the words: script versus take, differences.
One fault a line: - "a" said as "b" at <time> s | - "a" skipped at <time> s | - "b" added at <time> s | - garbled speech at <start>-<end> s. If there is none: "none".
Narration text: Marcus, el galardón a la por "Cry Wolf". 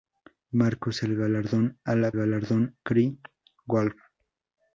- "por" said as "galardón" at 2.1 s